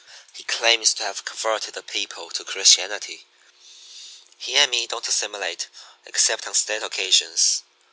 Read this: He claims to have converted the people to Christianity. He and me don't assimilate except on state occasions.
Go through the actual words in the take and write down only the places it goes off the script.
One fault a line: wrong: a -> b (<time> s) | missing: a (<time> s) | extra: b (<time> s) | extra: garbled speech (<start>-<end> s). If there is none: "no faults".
no faults